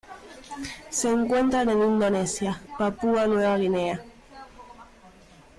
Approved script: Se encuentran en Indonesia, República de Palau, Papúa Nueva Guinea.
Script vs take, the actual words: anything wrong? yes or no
yes